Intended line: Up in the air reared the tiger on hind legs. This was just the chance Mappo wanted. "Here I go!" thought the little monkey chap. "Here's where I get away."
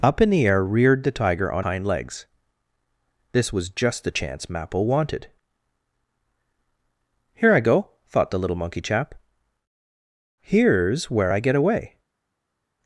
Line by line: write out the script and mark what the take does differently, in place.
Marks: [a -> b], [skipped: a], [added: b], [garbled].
Up in the air reared the tiger on hind legs. This was just the chance Mappo wanted. "Here I go!" thought the little monkey chap. "Here's where I get away."